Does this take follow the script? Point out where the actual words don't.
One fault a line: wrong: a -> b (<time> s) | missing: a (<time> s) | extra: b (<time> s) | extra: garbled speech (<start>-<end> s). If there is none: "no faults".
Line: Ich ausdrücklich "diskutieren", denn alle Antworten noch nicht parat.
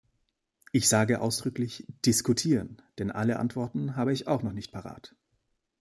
extra: sage (0.9 s)
extra: habe ich auch (4.0 s)